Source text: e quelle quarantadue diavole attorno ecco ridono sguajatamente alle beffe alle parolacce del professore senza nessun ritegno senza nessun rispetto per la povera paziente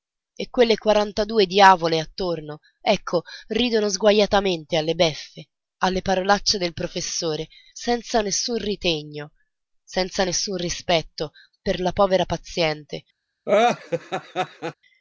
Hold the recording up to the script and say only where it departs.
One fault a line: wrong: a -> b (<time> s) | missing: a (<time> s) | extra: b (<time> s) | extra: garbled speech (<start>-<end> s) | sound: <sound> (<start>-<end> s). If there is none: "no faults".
sound: laugh (13.5-14.7 s)